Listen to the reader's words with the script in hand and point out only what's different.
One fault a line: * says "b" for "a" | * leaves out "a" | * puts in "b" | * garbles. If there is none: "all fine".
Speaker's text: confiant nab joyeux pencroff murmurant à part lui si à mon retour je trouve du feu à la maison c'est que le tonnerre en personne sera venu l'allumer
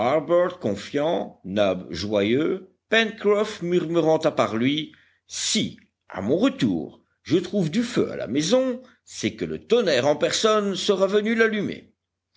all fine